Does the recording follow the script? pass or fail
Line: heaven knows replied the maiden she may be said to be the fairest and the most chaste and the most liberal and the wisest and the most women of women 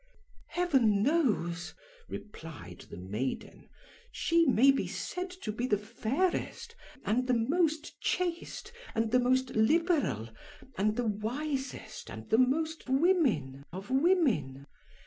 pass